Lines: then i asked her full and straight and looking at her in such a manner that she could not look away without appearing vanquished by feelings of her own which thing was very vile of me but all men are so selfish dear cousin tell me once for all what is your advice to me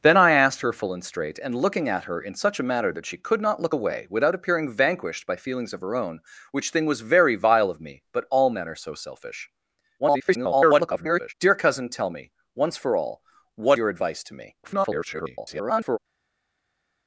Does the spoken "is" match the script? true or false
false